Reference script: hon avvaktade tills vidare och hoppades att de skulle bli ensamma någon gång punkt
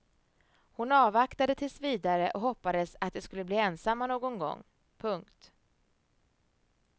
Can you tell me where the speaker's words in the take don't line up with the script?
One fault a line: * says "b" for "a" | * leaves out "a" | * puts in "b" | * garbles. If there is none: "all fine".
all fine